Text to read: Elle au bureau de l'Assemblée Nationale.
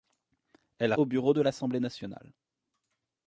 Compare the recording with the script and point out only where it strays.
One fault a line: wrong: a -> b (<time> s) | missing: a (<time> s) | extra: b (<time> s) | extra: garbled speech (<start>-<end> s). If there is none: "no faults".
no faults